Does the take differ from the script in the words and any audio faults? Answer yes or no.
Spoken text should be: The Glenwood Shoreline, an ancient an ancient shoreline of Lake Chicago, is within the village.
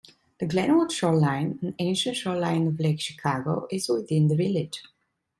yes